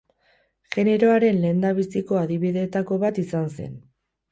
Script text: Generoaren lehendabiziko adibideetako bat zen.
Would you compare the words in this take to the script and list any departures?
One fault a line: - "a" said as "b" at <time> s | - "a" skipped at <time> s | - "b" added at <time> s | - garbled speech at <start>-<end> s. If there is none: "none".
- "izan" added at 3.3 s